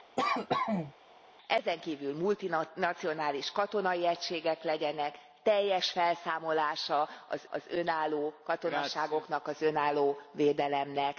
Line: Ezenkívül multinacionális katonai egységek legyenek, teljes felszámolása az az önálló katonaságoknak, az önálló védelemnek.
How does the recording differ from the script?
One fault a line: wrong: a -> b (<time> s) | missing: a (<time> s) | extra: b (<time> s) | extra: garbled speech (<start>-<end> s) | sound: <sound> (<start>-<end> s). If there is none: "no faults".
sound: cough (0.2-0.9 s)